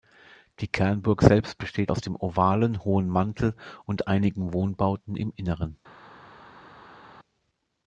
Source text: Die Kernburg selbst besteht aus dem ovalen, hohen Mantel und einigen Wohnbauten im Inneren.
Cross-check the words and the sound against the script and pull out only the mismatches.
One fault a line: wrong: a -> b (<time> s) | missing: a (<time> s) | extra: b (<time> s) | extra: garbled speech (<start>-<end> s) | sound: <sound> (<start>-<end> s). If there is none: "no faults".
no faults